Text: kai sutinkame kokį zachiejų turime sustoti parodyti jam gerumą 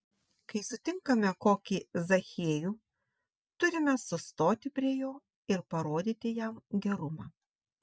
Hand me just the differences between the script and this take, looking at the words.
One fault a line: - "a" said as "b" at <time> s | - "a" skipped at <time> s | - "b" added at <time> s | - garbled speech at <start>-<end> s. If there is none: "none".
- "prie jo ir" added at 4.8 s